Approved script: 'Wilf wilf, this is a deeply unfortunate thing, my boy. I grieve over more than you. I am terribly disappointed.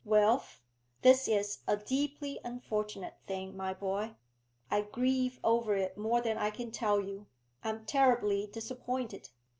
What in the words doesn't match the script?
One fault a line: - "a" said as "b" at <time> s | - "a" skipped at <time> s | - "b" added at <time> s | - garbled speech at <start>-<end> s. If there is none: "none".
- "wilf" skipped at 0.6 s
- "it" added at 5.8 s
- "I can tell" added at 6.4 s